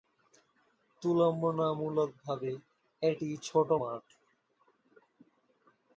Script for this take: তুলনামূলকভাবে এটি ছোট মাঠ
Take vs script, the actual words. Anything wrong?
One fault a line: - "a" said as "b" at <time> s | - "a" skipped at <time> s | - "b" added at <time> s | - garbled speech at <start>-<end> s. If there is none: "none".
none